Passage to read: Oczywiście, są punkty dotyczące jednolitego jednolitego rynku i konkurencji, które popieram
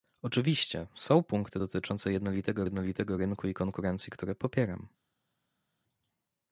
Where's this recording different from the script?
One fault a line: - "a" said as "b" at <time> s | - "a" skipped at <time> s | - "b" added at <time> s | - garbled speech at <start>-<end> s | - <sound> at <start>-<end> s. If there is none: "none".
none